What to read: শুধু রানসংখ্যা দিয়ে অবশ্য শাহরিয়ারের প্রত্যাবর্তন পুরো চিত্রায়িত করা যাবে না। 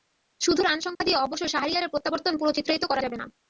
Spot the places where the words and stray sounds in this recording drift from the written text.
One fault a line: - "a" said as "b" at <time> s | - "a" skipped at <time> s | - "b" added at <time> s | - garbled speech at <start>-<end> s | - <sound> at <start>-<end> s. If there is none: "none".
- dropout at 0.9-1.0 s